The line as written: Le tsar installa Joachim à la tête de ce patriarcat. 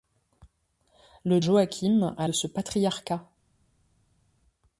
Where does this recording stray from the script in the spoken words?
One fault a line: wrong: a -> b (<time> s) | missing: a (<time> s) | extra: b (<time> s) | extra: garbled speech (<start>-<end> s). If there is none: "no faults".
missing: tsar installa (1.4 s)
missing: la tête (2.3 s)